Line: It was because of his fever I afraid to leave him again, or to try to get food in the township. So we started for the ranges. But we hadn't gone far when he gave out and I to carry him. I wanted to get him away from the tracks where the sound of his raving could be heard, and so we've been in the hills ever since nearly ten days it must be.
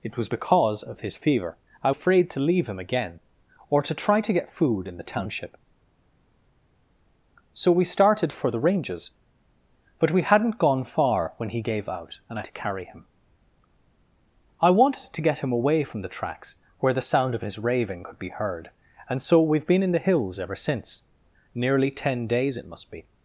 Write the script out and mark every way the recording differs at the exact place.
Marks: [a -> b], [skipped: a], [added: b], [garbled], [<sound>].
It was because of his fever I afraid to leave him again, or to try to get food in the township. So we started for the ranges. But we hadn't gone far when he gave out and I to carry him. I wanted to get him away from the tracks where the sound of his raving could be heard, and so we've been in the hills ever since nearly ten days it must be.